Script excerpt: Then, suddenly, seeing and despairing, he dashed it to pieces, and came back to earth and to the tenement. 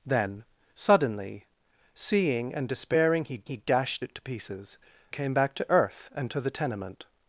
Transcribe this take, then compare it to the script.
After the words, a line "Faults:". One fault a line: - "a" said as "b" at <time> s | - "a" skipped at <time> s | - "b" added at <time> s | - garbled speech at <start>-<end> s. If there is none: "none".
Then, suddenly, seeing and despairing, he he dashed it to pieces, came back to earth and to the tenement.
Faults:
- "he" added at 3.4 s
- "and" skipped at 4.8 s